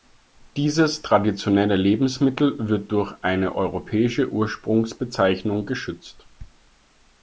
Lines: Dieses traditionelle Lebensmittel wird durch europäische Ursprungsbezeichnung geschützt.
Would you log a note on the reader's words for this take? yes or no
yes